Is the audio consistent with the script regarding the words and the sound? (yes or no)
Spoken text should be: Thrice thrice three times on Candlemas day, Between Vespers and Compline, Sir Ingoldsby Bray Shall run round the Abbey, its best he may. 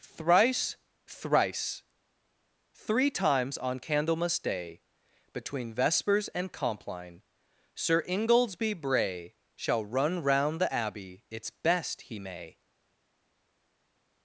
yes